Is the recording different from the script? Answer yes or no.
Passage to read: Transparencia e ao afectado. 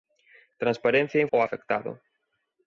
no